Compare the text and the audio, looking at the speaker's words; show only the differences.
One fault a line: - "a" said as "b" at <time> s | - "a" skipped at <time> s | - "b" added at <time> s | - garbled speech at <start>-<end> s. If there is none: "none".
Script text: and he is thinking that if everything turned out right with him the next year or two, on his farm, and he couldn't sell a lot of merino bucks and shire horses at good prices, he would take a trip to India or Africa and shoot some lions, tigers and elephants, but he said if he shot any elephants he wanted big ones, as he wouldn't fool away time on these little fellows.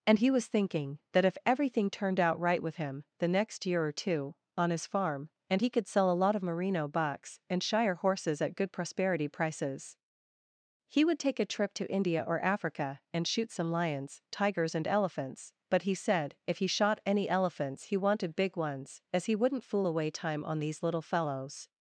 - "is" said as "was" at 0.3 s
- "couldn't" said as "could" at 5.7 s
- "prosperity" added at 8.7 s